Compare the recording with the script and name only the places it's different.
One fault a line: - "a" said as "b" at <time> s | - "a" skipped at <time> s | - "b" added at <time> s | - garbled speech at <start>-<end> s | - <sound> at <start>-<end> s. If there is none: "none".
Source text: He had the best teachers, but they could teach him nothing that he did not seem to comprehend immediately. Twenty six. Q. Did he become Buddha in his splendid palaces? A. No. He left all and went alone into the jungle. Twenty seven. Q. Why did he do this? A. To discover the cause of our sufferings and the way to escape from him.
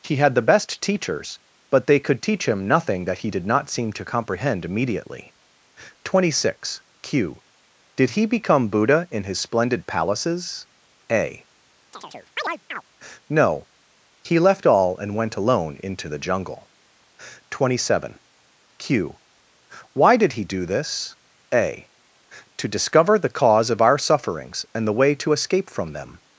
- chirp at 11.9-12.8 s
- "him" said as "them" at 25.9 s